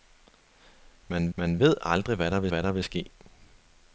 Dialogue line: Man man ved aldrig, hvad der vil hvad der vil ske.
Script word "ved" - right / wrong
right